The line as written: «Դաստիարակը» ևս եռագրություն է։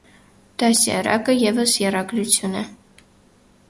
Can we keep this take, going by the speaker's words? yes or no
yes